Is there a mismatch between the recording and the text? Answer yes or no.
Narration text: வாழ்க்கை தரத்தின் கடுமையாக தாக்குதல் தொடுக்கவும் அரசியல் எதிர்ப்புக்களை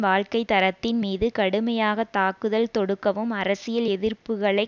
yes